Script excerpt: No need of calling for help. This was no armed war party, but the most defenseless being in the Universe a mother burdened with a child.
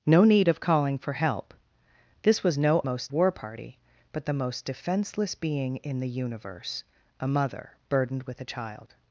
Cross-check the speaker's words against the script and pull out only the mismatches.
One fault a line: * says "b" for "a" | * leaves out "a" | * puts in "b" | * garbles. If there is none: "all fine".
* says "most" for "armed"